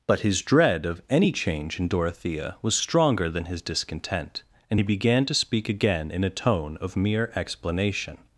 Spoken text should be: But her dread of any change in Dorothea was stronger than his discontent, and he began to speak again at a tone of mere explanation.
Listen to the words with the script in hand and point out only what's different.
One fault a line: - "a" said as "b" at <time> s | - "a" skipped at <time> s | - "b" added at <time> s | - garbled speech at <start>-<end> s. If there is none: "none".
- "her" said as "his" at 0.2 s
- "at" said as "in" at 6.1 s